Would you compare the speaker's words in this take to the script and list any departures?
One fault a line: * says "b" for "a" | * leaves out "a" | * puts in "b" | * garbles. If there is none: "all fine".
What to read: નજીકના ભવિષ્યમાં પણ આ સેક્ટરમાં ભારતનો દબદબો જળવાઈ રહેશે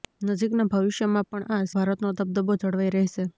* leaves out "સેક્ટરમાં"